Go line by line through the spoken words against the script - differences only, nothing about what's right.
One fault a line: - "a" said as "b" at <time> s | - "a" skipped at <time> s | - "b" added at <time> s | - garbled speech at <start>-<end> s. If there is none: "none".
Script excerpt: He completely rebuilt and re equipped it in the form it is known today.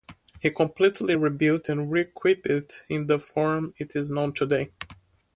none